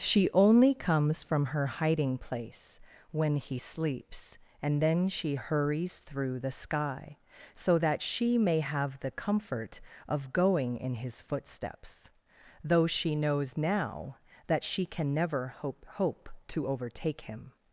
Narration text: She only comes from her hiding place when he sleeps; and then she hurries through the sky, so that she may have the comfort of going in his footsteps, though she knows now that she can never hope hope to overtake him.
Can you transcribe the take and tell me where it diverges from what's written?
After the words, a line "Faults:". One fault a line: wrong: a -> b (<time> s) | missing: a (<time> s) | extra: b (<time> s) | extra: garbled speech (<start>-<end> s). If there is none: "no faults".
She only comes from her hiding place when he sleeps; and then she hurries through the sky, so that she may have the comfort of going in his footsteps, though she knows now that she can never hope hope to overtake him.
Faults:
no faults